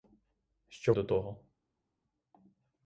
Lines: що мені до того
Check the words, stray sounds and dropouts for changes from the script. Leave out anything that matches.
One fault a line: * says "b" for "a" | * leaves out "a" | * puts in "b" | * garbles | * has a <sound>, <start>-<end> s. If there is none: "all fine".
* leaves out "мені"